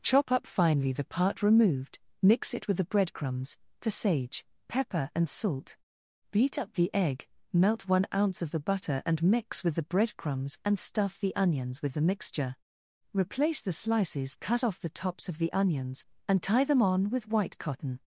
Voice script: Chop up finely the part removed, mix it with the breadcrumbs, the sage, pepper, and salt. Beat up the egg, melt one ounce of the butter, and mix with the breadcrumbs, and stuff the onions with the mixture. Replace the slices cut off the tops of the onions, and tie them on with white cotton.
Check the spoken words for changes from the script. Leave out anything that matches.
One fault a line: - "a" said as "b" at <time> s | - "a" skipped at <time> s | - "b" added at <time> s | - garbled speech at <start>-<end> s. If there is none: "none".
none